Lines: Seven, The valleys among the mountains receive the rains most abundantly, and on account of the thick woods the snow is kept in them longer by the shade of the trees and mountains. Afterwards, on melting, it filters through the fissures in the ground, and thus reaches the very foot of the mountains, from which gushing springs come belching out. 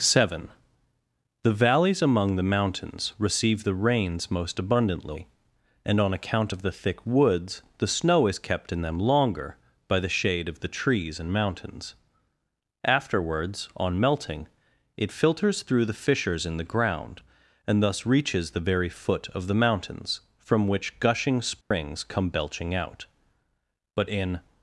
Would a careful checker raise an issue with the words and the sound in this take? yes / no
yes